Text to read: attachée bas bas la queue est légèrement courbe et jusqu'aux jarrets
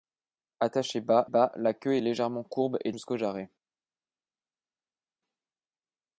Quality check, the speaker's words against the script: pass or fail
pass